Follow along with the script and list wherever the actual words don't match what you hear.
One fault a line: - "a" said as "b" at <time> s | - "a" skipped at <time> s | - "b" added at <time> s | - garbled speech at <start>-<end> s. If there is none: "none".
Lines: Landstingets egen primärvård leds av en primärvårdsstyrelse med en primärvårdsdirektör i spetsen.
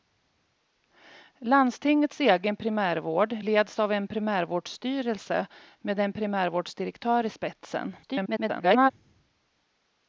- garbled speech at 8.0-8.9 s